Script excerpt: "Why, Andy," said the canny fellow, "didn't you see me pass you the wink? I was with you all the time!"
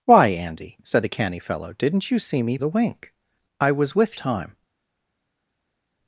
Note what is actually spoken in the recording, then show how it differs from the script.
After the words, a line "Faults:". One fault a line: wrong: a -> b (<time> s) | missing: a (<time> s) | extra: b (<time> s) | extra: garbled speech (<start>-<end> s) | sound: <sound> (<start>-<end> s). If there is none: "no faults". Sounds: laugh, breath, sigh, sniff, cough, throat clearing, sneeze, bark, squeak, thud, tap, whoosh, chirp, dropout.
"Why, Andy," said the canny fellow, "didn't you see me the wink? I was with time!"
Faults:
missing: pass you (2.6 s)
missing: you all the (4.2 s)